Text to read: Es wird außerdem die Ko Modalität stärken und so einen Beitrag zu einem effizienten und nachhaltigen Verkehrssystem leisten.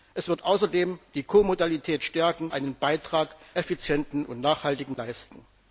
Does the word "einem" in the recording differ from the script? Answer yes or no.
yes